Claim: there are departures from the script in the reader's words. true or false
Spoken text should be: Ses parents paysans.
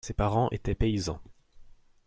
true